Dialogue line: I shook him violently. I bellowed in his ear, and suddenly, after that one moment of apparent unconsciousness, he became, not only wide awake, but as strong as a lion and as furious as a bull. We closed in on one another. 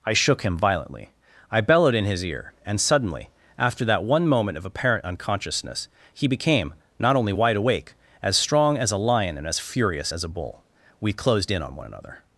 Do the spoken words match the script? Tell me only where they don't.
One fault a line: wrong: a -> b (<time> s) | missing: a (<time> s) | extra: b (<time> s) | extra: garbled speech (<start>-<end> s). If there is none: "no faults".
missing: but (7.9 s)